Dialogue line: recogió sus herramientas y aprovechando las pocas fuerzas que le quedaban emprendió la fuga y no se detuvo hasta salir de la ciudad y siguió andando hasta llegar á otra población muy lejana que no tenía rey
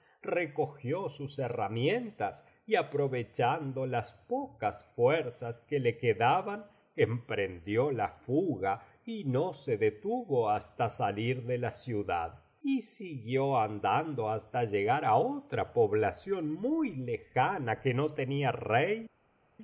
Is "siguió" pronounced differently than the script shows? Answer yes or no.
no